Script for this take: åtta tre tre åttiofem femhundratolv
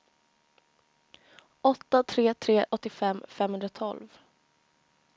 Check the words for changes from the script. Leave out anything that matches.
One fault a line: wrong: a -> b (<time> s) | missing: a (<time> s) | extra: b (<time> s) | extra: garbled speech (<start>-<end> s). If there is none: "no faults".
no faults